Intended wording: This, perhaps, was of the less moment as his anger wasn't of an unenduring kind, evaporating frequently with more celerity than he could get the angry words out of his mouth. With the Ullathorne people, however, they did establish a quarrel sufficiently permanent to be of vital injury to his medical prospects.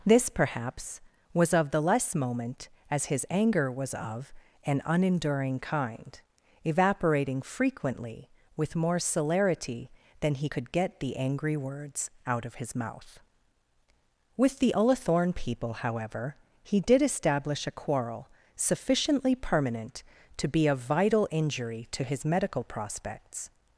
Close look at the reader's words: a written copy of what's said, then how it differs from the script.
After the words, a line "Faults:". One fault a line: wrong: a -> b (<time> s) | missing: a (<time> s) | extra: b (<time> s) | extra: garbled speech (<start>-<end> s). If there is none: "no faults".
This, perhaps, was of the less moment as his anger was of an unenduring kind, evaporating frequently with more celerity than he could get the angry words out of his mouth. With the Ullathorne people, however, he did establish a quarrel sufficiently permanent to be of vital injury to his medical prospects.
Faults:
wrong: wasn't -> was (3.7 s)
wrong: they -> he (16.6 s)